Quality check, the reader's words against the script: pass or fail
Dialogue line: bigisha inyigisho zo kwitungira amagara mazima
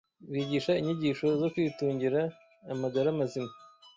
pass